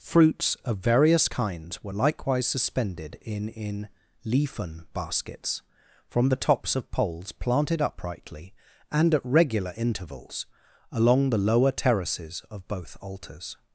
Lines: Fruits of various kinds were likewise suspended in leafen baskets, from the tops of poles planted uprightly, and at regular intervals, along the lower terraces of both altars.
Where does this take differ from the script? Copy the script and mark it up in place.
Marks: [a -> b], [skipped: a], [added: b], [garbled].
Fruits of various kinds were likewise suspended in [added: in] leafen baskets, from the tops of poles planted uprightly, and at regular intervals, along the lower terraces of both altars.